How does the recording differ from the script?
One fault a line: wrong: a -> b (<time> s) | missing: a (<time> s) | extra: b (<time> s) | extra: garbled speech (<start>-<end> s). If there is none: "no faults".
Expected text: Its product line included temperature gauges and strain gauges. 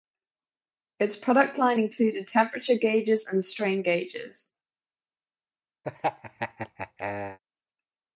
no faults